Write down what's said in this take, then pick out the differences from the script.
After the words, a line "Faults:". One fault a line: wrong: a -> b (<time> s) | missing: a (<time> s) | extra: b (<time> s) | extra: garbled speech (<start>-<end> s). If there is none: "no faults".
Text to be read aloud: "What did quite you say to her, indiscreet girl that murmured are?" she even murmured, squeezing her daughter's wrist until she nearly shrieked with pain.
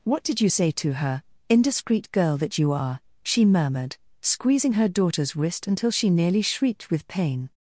"What did you say to her, indiscreet girl that you are?" she murmured, squeezing her daughter's wrist until she nearly shrieked with pain.
Faults:
missing: quite (0.4 s)
wrong: murmured -> you (2.6 s)
missing: even (3.4 s)